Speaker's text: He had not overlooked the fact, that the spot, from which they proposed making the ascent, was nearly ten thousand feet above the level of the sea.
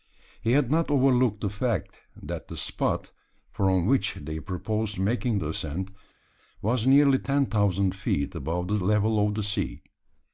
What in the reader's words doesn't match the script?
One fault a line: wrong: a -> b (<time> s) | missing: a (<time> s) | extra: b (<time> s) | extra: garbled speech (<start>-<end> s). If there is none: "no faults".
no faults